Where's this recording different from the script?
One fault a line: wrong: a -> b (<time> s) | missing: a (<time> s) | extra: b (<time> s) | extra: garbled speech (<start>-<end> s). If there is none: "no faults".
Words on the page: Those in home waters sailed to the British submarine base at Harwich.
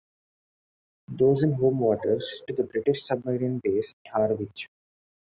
missing: sailed (2.4 s)
missing: at (3.9 s)